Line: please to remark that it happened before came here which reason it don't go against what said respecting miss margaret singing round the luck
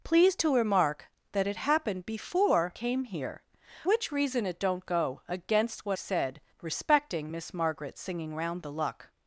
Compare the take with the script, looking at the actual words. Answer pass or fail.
pass